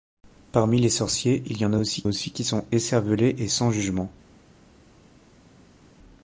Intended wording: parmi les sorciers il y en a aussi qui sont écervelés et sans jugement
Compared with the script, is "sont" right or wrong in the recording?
right